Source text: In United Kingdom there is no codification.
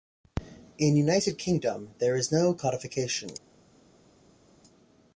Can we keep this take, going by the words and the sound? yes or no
yes